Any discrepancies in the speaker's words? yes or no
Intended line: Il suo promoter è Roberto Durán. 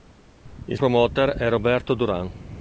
yes